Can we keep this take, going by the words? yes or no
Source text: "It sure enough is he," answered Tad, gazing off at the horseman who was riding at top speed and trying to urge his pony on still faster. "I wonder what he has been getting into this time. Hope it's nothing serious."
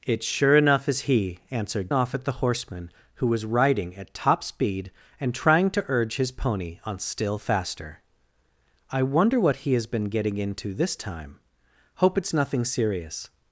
no